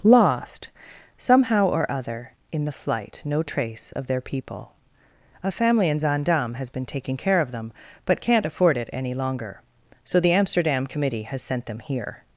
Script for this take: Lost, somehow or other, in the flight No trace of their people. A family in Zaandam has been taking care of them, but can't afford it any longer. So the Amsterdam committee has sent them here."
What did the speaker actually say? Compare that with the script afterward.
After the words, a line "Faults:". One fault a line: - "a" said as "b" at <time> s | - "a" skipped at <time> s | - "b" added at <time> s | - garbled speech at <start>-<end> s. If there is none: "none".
Lost, somehow or other, in the flight No trace of their people. A family in Zaandam has been taking care of them, but can't afford it any longer. So the Amsterdam committee has sent them here."
Faults:
none